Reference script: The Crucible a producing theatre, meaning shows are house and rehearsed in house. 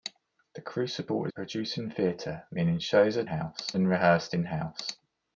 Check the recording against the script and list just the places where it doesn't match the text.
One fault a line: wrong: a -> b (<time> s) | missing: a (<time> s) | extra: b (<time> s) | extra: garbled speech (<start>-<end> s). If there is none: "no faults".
no faults